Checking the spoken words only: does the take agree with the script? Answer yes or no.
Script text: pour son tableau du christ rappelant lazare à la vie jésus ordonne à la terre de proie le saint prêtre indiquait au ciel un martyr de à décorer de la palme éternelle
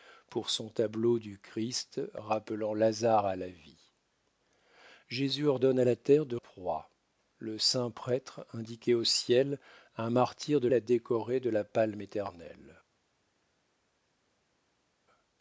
yes